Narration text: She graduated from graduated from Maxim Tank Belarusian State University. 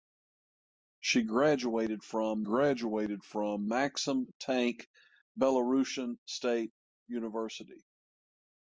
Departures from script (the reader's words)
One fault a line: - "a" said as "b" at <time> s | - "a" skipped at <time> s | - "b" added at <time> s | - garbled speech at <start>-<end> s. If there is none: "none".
none